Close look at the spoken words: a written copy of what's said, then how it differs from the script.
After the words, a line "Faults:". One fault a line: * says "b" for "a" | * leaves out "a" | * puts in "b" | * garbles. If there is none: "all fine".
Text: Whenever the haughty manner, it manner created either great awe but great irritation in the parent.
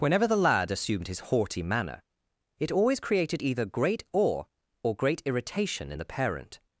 Whenever the lad assumed his haughty manner, it always created either great awe or great irritation in the parent.
Faults:
* puts in "lad assumed his"
* says "always" for "manner"
* says "or" for "but"